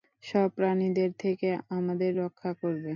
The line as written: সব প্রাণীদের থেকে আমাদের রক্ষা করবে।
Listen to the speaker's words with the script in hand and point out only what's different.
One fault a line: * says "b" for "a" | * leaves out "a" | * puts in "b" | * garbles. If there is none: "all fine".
all fine